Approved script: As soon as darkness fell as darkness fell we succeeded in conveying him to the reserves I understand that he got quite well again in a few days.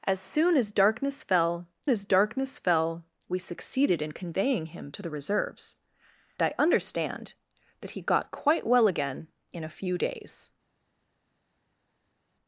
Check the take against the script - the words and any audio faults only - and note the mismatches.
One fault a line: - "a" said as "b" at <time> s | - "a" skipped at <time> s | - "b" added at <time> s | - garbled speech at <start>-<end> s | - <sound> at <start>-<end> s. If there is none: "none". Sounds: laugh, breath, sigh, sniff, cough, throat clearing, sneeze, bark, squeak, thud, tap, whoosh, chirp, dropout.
none